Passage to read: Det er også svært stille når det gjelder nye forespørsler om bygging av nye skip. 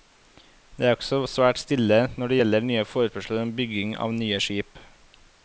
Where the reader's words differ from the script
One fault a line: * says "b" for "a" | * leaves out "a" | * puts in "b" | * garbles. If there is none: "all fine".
all fine